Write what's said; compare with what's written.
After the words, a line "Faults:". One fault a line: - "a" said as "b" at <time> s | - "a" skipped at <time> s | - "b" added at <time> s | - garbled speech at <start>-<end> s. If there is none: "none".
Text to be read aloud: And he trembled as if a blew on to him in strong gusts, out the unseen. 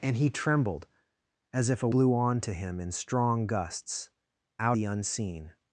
And he trembled as if a blew on to him in strong gusts, out the unseen.
Faults:
none